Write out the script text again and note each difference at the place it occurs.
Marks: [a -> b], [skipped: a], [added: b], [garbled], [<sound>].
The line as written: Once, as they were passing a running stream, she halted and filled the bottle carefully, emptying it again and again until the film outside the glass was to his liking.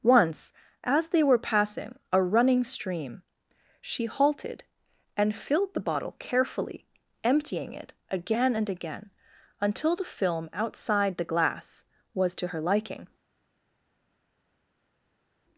Once, as they were passing a running stream, she halted and filled the bottle carefully, emptying it again and again until the film outside the glass was to [his -> her] liking.